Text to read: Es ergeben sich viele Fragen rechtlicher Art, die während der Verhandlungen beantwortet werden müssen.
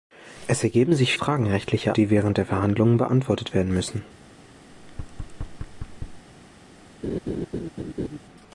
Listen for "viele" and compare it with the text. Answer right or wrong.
wrong